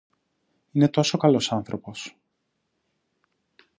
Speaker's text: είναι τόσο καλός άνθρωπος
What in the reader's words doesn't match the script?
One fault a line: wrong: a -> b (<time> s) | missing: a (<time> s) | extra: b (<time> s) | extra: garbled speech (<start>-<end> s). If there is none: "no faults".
no faults